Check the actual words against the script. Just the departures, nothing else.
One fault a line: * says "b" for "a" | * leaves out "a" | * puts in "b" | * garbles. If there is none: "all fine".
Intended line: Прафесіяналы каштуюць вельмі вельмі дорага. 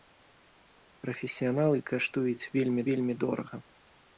all fine